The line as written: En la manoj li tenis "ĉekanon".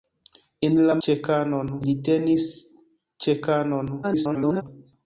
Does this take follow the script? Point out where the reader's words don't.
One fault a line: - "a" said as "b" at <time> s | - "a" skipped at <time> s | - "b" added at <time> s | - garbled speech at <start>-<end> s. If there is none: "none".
- "manoj" said as "ĉekanon" at 1.1 s
- garbled speech at 4.0-4.6 s